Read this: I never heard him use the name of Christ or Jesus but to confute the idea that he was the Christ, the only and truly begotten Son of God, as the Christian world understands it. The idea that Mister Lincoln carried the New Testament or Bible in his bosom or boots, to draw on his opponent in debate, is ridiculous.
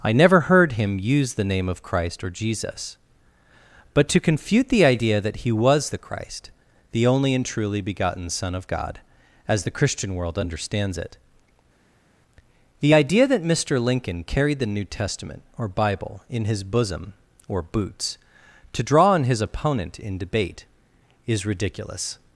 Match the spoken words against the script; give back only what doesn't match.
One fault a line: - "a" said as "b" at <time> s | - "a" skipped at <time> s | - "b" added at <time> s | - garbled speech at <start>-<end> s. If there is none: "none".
none